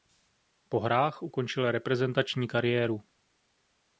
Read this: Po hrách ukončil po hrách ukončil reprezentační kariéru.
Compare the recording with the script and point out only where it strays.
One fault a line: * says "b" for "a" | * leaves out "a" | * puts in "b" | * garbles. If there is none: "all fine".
* leaves out "po hrách ukončil"